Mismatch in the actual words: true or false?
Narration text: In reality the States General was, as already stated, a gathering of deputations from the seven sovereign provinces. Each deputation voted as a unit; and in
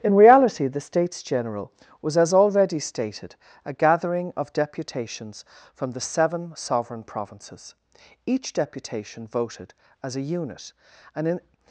false